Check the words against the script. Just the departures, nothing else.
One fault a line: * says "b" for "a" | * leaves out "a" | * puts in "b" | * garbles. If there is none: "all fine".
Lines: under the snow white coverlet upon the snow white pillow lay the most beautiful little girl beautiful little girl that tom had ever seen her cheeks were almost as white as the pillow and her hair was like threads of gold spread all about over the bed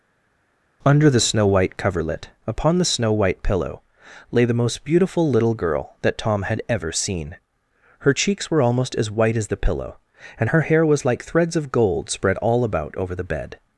* leaves out "beautiful little girl"